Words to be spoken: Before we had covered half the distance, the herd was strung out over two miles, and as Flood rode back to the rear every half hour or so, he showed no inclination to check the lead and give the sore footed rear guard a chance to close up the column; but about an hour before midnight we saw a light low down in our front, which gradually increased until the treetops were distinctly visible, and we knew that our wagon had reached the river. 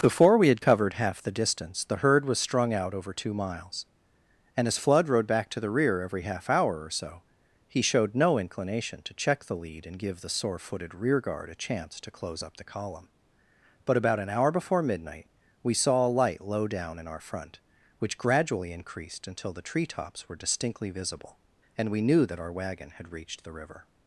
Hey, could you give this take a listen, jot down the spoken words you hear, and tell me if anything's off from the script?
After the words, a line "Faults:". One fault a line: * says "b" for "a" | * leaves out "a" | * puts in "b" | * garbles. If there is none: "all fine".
Before we had covered half the distance, the herd was strung out over two miles, and as Flood rode back to the rear every half hour or so, he showed no inclination to check the lead and give the sore footed rear guard a chance to close up the column; but about an hour before midnight we saw a light low down in our front, which gradually increased until the treetops were distinctly visible, and we knew that our wagon had reached the river.
Faults:
all fine